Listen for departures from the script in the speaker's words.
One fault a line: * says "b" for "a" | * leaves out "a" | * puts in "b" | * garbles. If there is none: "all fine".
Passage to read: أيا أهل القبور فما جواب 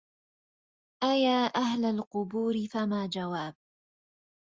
all fine